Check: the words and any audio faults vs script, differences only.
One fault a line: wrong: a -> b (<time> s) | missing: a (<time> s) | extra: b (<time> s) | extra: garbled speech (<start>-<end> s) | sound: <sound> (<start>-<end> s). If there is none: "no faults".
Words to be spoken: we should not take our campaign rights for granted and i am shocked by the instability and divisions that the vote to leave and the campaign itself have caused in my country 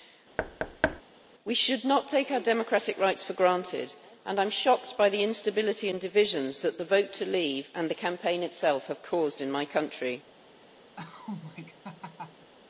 sound: thud (0.4-1.0 s)
wrong: campaign -> democratic (2.4 s)
sound: laugh (11.0-12.5 s)